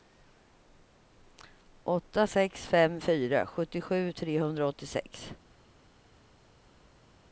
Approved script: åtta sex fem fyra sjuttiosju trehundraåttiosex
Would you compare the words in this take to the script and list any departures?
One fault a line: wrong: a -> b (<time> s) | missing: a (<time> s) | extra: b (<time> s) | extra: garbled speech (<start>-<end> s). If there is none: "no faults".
no faults